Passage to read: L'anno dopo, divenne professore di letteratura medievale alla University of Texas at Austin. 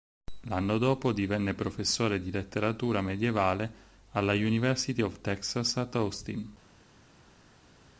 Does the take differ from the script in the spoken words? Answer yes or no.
no